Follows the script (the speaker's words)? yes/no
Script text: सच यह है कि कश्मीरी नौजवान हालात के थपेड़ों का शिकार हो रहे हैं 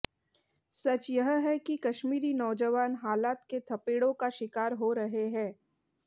yes